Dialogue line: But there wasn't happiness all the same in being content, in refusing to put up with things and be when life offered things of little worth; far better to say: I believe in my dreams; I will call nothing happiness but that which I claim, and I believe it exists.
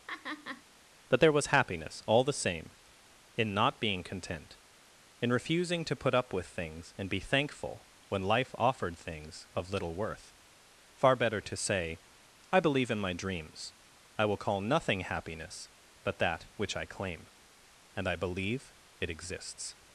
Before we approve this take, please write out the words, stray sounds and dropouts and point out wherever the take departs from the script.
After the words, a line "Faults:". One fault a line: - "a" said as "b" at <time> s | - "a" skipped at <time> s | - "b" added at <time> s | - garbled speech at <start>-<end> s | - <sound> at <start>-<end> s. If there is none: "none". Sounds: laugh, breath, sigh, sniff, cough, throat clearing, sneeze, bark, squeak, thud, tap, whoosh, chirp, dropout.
But there was happiness all the same in not being content, in refusing to put up with things and be thankful when life offered things of little worth; far better to say: I believe in my dreams; I will call nothing happiness but that which I claim, and I believe it exists.
Faults:
- laugh at 0.1-0.6 s
- "wasn't" said as "was" at 1.3 s
- "not" added at 3.5 s
- "thankful" added at 7.2 s